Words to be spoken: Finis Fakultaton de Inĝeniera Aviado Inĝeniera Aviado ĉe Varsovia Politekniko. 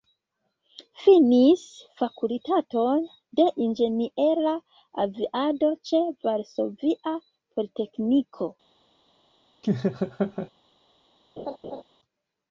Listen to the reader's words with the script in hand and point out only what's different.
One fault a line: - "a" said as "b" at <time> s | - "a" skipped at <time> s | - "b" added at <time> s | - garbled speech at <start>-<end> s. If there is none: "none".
- "Inĝeniera Aviado" skipped at 5.7 s